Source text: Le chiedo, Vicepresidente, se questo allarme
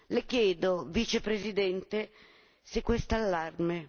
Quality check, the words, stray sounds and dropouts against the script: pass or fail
pass